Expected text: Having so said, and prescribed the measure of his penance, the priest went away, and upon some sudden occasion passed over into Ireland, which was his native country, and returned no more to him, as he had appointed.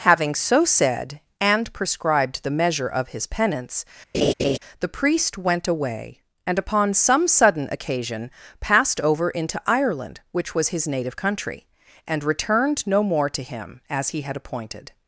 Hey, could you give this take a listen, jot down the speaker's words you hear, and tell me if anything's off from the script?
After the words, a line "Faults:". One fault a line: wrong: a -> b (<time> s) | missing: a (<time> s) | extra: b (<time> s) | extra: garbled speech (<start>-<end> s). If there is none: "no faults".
Having so said, and prescribed the measure of his penance, the priest went away, and upon some sudden occasion passed over into Ireland, which was his native country, and returned no more to him, as he had appointed.
Faults:
no faults